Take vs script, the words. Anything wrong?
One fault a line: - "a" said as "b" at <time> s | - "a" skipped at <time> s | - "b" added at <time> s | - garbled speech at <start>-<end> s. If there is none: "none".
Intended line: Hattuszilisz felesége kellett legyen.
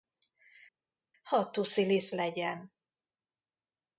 - "felesége kellett" skipped at 2.1 s